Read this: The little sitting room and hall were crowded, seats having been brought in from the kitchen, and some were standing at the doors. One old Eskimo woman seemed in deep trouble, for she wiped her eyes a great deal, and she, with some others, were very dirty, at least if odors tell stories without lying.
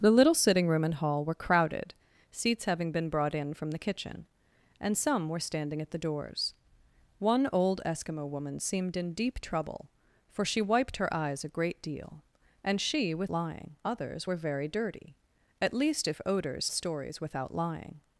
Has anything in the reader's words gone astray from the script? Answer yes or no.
yes